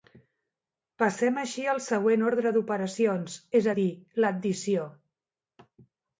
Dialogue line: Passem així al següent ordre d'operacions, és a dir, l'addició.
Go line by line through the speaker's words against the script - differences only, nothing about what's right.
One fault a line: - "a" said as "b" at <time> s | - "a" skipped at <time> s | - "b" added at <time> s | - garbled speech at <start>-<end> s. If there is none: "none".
none